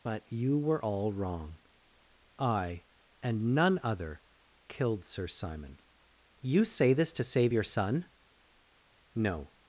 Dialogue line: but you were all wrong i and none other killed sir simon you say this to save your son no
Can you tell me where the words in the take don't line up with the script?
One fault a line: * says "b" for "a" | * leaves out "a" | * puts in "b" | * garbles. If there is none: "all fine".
all fine